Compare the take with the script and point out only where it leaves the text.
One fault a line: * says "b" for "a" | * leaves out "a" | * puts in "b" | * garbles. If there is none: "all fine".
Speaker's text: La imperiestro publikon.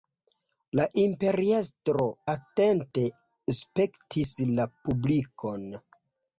* puts in "atente spektis la"